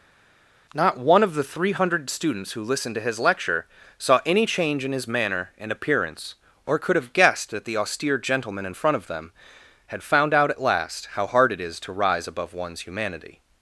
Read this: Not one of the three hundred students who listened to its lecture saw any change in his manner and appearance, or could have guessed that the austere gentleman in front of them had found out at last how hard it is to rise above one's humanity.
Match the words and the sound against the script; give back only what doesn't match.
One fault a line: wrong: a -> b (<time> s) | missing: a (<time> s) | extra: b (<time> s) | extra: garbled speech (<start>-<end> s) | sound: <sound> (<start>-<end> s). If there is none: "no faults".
wrong: its -> his (3.0 s)